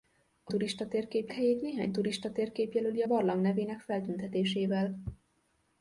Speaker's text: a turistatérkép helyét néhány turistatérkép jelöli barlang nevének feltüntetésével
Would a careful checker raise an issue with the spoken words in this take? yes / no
no